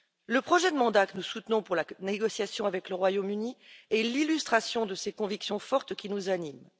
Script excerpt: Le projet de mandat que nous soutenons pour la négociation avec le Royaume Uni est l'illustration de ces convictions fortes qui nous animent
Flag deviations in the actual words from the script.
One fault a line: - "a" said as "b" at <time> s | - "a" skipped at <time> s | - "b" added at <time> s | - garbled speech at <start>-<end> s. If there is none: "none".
none